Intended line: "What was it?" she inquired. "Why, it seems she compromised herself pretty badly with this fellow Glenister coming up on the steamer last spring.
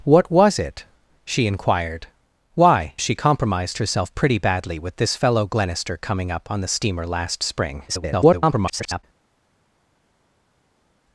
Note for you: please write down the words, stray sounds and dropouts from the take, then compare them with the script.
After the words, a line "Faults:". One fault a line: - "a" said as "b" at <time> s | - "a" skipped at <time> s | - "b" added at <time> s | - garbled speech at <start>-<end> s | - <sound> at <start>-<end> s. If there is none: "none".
"What was it?" she inquired. "Why, she compromised herself pretty badly with this fellow Glenister coming up on the steamer last spring. [garbled]
Faults:
- "it seems" skipped at 3.0 s
- garbled speech at 7.9-9.0 s